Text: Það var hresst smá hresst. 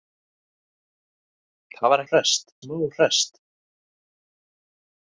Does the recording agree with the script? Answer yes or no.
yes